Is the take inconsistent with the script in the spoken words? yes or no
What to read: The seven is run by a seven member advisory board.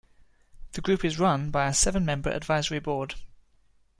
yes